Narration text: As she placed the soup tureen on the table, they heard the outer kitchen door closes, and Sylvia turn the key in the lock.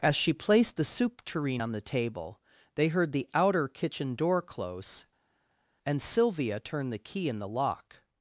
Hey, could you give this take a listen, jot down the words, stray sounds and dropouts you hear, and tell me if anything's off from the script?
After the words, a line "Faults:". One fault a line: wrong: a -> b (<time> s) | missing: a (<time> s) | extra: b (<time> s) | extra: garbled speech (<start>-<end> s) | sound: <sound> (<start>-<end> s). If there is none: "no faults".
As she placed the soup tureen on the table, they heard the outer kitchen door close, and Sylvia turn the key in the lock.
Faults:
wrong: closes -> close (4.4 s)